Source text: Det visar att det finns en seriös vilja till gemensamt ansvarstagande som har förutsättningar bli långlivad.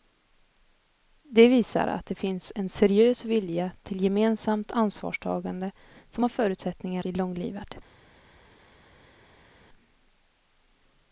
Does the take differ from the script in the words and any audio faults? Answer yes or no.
no